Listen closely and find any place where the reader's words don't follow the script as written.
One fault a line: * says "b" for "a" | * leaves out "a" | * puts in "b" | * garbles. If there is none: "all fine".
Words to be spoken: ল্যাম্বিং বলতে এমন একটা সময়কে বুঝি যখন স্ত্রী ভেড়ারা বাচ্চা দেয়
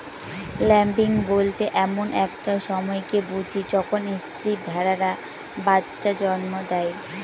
* puts in "জন্ম"